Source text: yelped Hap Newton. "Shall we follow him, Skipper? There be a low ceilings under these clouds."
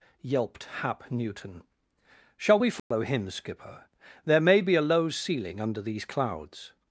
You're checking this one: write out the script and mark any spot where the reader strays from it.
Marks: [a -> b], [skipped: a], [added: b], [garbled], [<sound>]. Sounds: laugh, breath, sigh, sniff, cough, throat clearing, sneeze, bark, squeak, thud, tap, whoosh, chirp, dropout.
yelped Hap Newton. "Shall we follow [dropout] him, Skipper? There [added: may] be a low [ceilings -> ceiling] under these clouds."